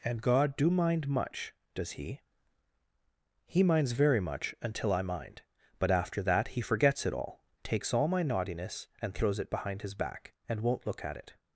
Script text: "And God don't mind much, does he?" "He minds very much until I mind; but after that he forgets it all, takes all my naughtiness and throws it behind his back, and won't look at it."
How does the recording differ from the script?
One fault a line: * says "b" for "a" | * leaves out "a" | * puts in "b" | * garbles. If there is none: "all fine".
* says "do" for "don't"